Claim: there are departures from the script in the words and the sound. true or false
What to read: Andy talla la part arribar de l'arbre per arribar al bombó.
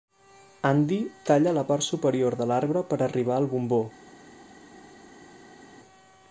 true